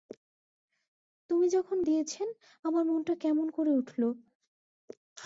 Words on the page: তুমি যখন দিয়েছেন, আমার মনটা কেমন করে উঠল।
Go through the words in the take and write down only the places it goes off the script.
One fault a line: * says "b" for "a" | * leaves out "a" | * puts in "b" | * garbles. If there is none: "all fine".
all fine